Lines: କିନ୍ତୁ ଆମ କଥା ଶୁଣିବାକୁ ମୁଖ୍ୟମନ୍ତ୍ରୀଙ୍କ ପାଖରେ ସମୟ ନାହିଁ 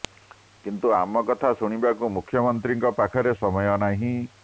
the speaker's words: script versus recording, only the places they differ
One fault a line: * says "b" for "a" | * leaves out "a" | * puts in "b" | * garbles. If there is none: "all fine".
all fine